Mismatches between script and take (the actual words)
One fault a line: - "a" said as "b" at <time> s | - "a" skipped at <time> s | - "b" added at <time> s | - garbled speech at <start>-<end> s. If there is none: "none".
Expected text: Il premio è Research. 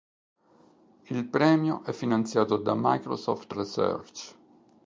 - "finanziato da Microsoft" added at 1.9 s